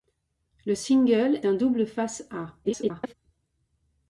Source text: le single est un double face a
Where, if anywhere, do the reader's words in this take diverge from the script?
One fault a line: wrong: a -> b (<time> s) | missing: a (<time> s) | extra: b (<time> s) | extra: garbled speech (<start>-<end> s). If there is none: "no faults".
missing: est (1.4 s)
extra: garbled speech (2.6-3.1 s)